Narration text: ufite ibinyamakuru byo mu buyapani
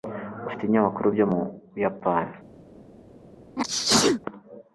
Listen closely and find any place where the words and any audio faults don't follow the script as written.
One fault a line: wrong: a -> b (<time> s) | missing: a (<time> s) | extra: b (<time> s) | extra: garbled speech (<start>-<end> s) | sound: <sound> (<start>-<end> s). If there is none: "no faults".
sound: sneeze (3.6-4.2 s)